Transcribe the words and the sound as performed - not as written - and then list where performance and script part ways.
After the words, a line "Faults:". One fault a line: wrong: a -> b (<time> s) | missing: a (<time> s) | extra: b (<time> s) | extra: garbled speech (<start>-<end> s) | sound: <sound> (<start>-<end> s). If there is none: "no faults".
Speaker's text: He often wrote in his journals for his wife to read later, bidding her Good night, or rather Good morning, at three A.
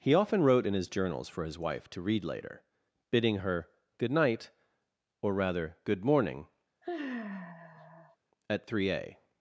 He often wrote in his journals for his wife to read later, bidding her Good night, or rather Good morning, at three A.
Faults:
sound: sigh (6.8-8.2 s)